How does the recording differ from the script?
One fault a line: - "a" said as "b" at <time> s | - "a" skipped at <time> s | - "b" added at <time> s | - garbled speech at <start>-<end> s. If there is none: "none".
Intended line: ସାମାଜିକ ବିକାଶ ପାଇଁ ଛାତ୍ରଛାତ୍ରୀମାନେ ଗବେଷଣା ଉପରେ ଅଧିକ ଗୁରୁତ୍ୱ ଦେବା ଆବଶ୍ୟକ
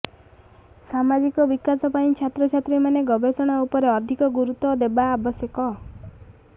none